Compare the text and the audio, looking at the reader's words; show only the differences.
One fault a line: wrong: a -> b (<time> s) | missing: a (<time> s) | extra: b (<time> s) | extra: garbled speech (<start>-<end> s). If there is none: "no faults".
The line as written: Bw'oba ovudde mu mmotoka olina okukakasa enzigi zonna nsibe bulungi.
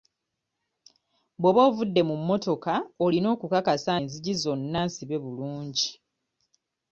no faults